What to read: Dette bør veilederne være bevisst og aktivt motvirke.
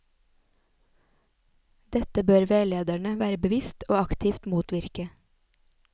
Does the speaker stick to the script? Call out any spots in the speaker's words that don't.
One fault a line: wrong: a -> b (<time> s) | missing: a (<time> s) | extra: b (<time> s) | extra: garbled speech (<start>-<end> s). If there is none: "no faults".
no faults